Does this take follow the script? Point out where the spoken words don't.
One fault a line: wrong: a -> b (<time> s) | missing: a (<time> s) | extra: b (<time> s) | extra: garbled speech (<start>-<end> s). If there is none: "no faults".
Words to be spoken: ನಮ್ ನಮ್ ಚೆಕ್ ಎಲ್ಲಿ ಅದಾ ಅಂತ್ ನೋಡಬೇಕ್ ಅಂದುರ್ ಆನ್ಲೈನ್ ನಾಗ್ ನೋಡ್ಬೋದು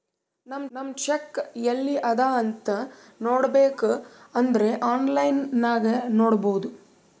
no faults